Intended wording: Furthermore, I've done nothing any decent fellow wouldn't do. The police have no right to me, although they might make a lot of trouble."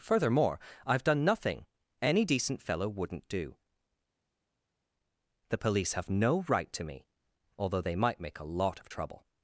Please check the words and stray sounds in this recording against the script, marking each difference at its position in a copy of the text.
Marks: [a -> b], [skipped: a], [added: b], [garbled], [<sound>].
Furthermore, I've done nothing any decent fellow wouldn't do. The police have no right to me, although they might make a lot of trouble."